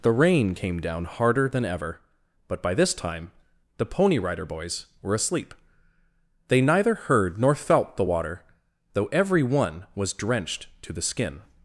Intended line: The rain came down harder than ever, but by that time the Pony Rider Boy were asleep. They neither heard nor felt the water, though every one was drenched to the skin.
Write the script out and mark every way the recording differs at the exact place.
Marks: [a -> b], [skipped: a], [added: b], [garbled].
The rain came down harder than ever, but by [that -> this] time the Pony Rider [Boy -> Boys] were asleep. They neither heard nor felt the water, though every one was drenched to the skin.